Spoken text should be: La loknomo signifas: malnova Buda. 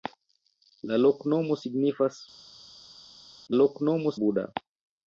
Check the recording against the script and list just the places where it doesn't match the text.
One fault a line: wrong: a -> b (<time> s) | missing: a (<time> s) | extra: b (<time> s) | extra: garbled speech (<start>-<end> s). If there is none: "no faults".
wrong: malnova -> loknomo (3.6 s)